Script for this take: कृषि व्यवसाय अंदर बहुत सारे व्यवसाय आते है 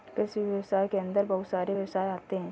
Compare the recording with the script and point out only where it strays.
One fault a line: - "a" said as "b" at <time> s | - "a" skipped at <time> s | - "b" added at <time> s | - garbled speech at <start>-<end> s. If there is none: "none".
- "के" added at 0.8 s